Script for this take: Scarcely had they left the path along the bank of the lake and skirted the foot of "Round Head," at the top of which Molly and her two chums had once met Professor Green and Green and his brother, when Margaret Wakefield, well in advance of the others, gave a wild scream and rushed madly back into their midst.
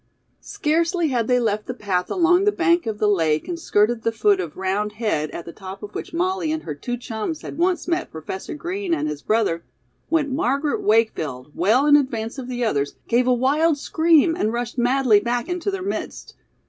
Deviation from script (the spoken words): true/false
true